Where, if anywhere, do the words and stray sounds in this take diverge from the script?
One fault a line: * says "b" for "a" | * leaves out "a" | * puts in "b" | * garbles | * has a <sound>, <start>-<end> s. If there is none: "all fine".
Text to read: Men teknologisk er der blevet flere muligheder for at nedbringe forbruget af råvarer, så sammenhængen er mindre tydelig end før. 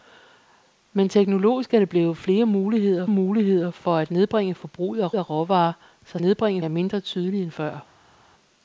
* puts in "muligheder"
* puts in "af"
* says "nedbringe" for "sammenhængen"